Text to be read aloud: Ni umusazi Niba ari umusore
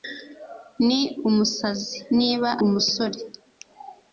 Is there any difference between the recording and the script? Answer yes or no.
yes